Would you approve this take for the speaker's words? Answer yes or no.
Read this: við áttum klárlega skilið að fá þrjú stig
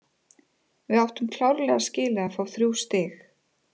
yes